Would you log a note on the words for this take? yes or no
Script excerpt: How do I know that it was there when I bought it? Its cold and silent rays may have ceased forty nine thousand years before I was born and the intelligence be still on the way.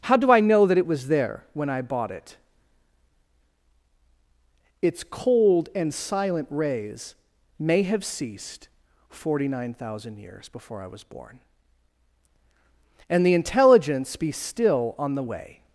no